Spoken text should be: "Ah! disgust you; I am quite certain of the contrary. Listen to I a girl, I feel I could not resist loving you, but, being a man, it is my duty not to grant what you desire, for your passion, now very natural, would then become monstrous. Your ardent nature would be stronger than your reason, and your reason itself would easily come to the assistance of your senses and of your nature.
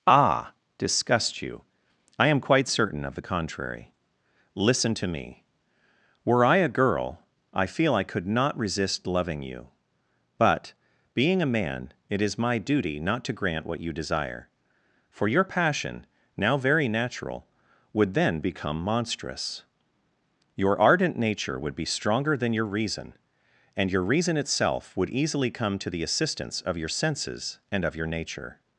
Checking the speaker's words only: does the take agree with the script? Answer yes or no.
no